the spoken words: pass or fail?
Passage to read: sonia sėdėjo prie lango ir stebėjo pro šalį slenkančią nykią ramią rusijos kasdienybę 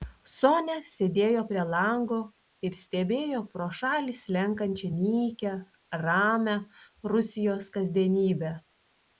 pass